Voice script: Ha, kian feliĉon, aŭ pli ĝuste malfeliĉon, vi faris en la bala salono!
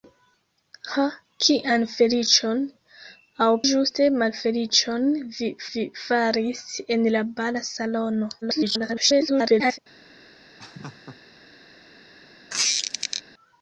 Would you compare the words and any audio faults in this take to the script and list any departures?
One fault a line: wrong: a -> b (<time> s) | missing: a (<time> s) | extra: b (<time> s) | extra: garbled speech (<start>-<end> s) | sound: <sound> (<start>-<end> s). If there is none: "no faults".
missing: pli (3.5 s)
extra: vi (5.7 s)
extra: garbled speech (8.4-9.8 s)
sound: laugh (10.6-11.2 s)
sound: squeak (12.5-13.2 s)